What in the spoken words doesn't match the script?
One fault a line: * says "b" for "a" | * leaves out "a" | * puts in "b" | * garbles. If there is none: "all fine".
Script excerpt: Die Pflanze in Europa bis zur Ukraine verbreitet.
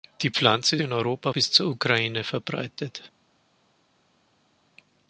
all fine